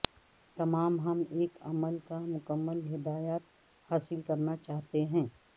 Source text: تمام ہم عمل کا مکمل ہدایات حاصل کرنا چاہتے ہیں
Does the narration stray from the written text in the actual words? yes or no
yes